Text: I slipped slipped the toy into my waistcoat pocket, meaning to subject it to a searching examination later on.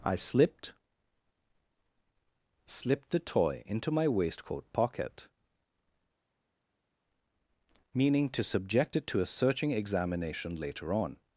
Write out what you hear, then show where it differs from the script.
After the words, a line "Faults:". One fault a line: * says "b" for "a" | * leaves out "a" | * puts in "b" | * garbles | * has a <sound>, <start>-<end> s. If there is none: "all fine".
I slipped slipped the toy into my waistcoat pocket, meaning to subject it to a searching examination later on.
Faults:
all fine